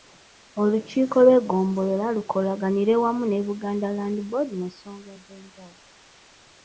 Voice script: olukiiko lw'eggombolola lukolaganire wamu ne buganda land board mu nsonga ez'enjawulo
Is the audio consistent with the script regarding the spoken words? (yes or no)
yes